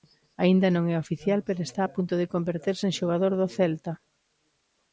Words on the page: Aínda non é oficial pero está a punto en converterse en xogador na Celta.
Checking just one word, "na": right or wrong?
wrong